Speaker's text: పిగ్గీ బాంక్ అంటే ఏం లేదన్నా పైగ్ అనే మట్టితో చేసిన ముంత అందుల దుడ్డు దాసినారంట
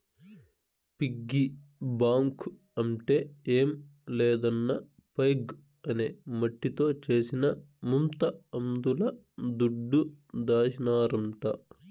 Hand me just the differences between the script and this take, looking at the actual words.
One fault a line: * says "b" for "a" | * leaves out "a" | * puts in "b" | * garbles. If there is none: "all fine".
all fine